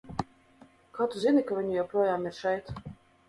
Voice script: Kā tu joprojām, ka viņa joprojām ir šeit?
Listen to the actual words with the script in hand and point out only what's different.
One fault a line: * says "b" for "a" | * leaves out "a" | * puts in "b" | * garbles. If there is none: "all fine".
* says "zini" for "joprojām"